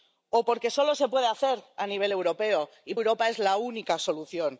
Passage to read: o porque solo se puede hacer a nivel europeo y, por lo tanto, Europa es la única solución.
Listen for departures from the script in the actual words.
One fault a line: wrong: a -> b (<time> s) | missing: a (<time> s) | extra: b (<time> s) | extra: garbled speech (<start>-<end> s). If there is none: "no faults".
missing: por lo tanto (2.9 s)